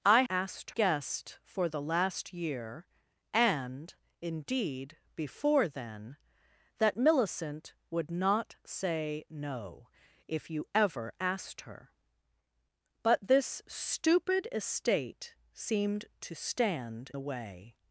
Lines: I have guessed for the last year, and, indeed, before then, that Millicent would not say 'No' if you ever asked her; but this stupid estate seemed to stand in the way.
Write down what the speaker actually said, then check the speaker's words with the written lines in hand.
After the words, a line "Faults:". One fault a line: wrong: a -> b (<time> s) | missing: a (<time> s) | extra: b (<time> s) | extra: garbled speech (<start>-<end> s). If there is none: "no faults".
I asked guessed for the last year, and, indeed, before then, that Millicent would not say 'No' if you ever asked her; but this stupid estate seemed to stand the way.
Faults:
wrong: have -> asked (0.3 s)
missing: in (17.1 s)